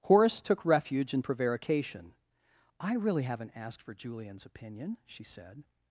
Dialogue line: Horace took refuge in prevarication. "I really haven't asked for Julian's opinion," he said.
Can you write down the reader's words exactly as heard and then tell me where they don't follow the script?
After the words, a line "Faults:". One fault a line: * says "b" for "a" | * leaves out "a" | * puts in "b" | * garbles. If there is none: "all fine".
Horace took refuge in prevarication. "I really haven't asked for Julian's opinion," she said.
Faults:
* says "she" for "he"